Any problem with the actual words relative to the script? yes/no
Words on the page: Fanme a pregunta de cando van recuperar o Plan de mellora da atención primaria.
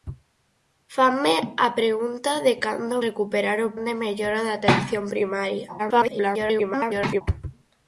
yes